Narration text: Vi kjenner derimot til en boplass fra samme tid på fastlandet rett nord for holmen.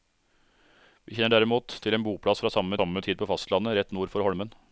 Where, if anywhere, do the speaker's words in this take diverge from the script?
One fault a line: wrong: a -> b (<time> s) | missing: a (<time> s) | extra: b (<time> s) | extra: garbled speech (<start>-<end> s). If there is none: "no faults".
extra: samme (2.8 s)